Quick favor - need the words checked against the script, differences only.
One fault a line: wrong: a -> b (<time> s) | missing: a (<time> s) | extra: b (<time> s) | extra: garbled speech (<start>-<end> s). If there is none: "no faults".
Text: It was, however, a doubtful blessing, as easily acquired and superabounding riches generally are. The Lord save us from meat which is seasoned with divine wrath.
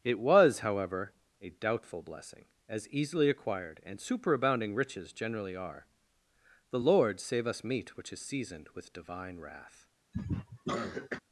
missing: from (7.6 s)